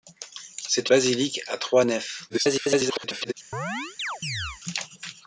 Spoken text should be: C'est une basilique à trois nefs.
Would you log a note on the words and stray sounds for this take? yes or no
yes